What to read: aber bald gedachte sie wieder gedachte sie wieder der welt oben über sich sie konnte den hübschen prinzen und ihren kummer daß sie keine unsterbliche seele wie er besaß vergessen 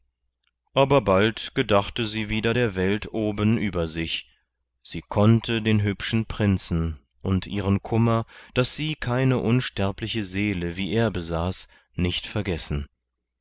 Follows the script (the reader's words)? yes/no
no